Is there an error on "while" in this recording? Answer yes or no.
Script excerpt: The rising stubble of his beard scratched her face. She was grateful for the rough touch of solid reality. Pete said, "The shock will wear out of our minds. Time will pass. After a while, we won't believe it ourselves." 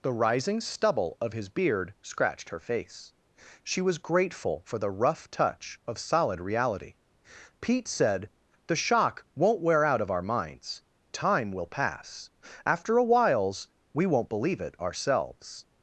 yes